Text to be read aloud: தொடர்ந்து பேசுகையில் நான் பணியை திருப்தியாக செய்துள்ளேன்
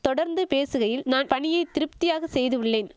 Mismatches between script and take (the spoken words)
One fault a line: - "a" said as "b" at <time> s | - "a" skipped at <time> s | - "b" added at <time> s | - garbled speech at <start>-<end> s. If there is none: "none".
none